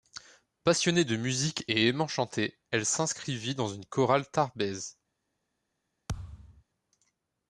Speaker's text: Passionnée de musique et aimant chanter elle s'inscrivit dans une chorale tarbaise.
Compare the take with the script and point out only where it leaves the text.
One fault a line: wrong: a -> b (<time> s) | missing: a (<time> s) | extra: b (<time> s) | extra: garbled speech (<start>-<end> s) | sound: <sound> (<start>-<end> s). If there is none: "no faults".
sound: thud (6.1-6.6 s)